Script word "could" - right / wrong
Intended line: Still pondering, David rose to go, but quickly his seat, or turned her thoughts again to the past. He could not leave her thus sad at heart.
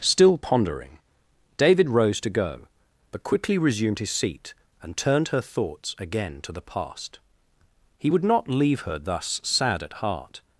wrong